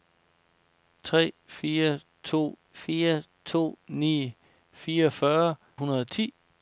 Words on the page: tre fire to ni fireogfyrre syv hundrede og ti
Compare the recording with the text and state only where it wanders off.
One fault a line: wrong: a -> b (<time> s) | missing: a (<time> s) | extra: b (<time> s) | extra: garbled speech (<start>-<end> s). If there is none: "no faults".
extra: fire to (2.7 s)
missing: syv (5.5 s)